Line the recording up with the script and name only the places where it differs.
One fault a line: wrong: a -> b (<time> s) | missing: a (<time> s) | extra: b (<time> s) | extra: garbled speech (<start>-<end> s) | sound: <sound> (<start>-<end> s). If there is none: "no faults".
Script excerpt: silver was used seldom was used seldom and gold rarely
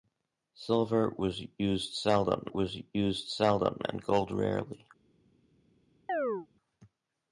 sound: chirp (6.1-6.5 s)